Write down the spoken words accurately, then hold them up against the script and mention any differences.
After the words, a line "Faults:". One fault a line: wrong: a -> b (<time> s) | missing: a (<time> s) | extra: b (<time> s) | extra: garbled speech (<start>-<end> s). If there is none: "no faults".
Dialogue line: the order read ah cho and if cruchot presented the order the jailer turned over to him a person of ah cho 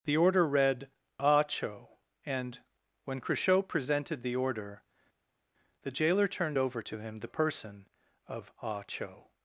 the order read ah cho and when cruchot presented the order the jailer turned over to him the person of ah cho
Faults:
wrong: if -> when (3.0 s)
wrong: a -> the (7.2 s)